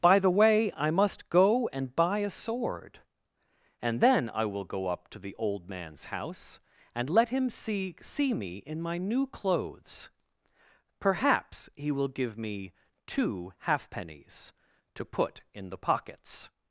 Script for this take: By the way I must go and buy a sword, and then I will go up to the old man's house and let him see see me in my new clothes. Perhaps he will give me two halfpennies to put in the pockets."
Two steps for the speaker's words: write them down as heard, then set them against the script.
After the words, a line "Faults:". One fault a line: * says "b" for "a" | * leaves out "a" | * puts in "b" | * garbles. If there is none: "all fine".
By the way I must go and buy a sword, and then I will go up to the old man's house and let him see see me in my new clothes. Perhaps he will give me two halfpennies to put in the pockets."
Faults:
all fine